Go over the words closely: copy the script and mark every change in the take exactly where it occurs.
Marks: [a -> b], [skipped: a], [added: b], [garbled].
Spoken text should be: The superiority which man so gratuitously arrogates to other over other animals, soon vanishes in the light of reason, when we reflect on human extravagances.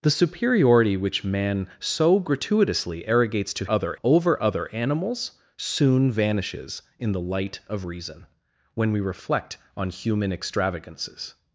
The superiority which man so gratuitously arrogates to other over other animals, soon vanishes in the light of reason, when we reflect on human extravagances.